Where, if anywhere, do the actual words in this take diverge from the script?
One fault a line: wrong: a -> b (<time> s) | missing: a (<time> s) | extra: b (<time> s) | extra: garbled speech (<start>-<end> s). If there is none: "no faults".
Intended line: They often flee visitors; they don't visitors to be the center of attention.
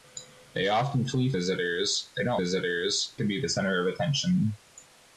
no faults